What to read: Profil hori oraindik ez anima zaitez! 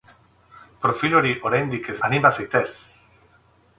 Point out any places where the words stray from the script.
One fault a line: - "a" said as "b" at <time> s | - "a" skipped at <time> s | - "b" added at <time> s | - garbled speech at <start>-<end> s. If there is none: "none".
none